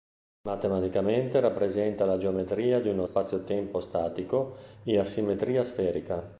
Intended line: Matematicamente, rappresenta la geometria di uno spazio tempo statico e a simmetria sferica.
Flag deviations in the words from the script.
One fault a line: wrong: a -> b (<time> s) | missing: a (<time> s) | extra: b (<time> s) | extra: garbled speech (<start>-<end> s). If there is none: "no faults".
no faults